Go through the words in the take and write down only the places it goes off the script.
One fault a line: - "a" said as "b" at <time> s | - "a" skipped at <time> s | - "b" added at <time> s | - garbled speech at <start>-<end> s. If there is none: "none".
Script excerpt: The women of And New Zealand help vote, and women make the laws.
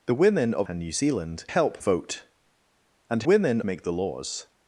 none